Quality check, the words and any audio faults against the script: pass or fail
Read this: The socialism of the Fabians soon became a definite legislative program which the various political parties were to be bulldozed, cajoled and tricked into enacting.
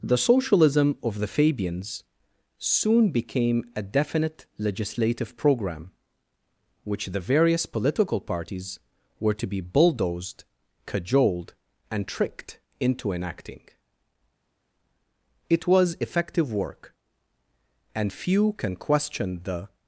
fail